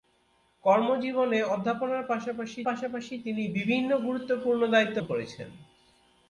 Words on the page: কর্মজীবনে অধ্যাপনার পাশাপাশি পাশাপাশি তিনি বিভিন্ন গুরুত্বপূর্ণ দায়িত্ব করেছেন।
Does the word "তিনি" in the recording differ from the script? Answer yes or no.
no